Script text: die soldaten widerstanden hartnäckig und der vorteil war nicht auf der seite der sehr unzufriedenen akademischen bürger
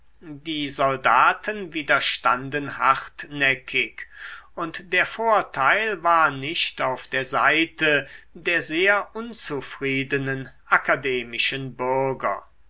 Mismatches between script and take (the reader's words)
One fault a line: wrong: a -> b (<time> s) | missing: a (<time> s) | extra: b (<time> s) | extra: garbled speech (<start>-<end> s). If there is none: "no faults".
no faults